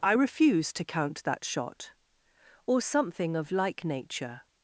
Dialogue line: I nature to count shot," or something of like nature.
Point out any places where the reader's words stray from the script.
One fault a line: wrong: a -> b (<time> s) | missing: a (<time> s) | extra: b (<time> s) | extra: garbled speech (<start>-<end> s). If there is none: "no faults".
wrong: nature -> refuse (0.1 s)
extra: that (1.2 s)